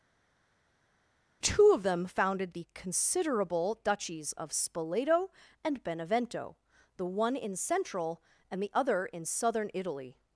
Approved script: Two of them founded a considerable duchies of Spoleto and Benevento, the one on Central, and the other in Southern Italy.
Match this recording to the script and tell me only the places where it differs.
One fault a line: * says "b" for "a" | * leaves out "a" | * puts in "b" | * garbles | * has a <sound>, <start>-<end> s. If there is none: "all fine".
* says "the" for "a"
* says "in" for "on"